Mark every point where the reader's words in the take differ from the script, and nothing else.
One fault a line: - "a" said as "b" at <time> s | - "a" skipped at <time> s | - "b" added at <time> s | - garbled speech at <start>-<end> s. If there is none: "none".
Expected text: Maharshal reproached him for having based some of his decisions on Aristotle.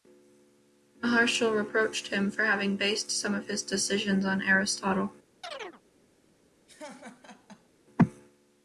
none